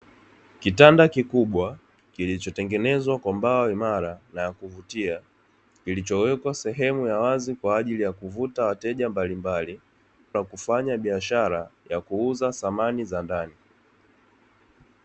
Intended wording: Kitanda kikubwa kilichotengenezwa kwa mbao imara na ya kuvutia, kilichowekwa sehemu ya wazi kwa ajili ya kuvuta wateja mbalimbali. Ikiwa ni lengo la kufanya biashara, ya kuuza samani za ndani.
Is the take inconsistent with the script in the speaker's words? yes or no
yes